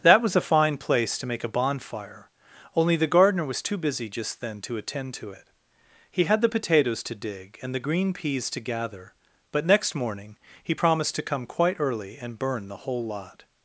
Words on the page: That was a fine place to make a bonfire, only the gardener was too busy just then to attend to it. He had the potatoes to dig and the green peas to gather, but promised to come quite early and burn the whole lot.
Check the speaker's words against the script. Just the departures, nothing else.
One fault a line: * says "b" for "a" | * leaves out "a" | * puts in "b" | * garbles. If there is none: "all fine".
* puts in "next morning he"